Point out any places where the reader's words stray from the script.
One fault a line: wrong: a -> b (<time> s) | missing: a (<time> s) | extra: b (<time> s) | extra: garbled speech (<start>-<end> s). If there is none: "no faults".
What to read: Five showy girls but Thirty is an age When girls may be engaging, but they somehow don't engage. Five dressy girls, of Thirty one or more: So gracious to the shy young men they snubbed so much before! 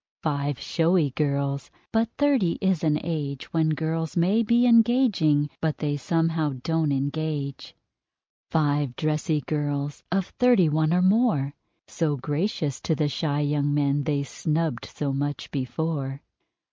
no faults